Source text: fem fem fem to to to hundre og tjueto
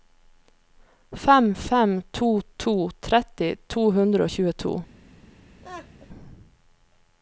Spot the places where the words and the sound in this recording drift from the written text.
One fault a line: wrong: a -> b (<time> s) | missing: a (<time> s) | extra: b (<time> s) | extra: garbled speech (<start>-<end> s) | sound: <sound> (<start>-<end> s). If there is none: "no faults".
wrong: fem -> to (2.1 s)
wrong: to -> tretti (3.1 s)
sound: laugh (5.6-6.1 s)